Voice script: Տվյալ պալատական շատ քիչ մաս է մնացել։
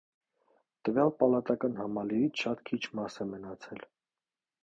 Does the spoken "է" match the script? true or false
true